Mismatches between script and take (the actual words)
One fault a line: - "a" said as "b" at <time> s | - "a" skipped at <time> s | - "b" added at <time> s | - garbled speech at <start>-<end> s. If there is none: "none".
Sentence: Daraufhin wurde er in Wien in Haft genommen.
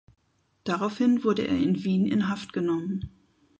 none